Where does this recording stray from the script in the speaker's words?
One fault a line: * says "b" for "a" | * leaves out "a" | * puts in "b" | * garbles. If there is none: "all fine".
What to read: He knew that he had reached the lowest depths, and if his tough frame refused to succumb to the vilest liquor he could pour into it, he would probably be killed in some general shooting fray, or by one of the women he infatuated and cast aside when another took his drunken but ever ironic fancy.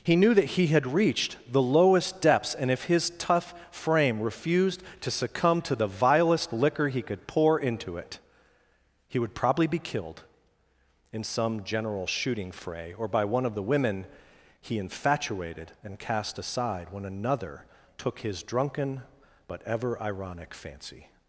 all fine